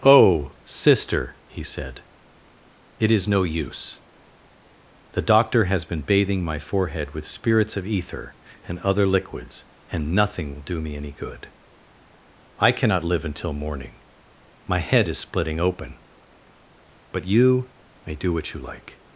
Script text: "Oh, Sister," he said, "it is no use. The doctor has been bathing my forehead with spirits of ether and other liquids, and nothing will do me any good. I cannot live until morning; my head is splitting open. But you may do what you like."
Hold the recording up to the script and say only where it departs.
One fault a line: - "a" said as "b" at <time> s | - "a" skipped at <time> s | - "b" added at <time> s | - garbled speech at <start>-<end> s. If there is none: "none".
none